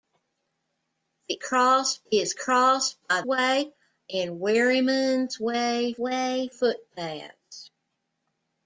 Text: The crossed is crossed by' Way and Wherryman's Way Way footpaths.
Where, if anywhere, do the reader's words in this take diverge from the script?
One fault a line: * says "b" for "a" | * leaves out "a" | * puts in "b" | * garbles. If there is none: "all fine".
all fine